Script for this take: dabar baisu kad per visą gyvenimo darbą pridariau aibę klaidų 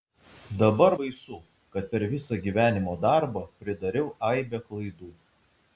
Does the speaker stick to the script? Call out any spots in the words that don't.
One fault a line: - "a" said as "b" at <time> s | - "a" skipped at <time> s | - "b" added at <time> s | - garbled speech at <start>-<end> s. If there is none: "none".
none